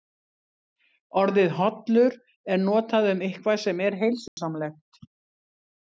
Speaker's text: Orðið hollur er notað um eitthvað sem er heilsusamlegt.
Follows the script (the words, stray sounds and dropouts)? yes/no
no